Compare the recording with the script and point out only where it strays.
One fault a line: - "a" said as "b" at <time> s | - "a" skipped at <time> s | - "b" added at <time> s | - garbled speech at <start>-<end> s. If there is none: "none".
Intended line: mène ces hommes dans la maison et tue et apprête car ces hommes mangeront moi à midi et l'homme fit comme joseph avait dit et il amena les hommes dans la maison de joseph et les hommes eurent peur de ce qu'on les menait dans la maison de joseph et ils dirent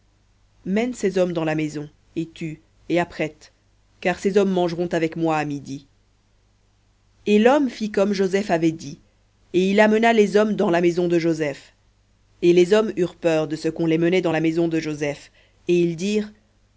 - "avec" added at 4.9 s